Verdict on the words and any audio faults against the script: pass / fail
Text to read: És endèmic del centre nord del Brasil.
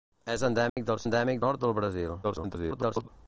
fail